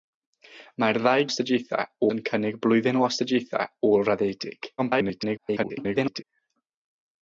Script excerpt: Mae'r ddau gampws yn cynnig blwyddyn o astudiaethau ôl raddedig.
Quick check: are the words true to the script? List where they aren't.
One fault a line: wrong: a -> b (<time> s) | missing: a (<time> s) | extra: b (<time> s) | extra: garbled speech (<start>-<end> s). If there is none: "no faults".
wrong: gampws -> astudiaethau (1.3 s)
extra: garbled speech (4.8-6.2 s)